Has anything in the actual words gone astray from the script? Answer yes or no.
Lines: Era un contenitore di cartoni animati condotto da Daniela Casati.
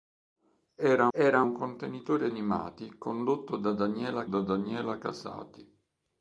yes